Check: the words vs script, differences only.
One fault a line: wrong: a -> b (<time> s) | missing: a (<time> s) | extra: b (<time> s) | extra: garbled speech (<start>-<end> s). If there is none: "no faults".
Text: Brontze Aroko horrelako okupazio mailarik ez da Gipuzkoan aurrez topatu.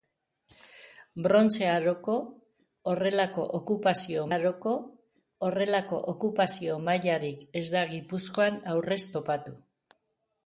extra: Aroko horrelako okupazio (4.3 s)